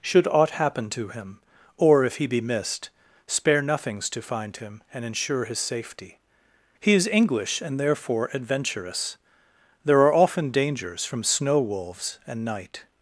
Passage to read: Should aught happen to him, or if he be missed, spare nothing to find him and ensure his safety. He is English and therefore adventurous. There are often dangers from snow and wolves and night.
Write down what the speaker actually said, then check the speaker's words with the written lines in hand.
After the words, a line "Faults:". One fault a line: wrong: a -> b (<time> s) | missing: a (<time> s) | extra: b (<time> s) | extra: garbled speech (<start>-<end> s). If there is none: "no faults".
Should aught happen to him, or if he be missed, spare nothings to find him and ensure his safety. He is English and therefore adventurous. There are often dangers from snow wolves and night.
Faults:
wrong: nothing -> nothings (3.6 s)
missing: and (11.6 s)